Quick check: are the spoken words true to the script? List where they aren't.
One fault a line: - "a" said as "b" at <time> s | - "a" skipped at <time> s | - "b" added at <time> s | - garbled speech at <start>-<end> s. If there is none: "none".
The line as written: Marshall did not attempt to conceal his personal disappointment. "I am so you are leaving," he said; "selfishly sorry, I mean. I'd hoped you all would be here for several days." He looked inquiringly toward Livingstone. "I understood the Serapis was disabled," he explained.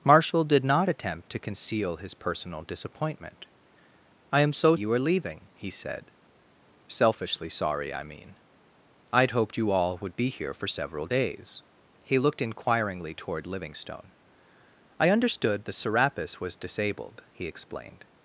none